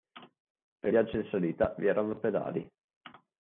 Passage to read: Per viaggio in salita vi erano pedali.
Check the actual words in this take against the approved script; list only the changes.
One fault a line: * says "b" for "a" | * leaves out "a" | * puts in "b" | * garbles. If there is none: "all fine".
all fine